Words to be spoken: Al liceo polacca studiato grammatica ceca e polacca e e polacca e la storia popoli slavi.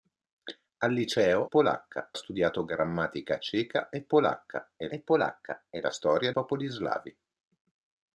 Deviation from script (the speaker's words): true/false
false